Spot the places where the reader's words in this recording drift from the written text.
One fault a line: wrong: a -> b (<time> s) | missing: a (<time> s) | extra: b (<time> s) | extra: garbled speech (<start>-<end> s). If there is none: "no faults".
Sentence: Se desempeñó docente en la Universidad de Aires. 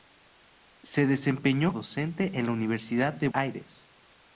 no faults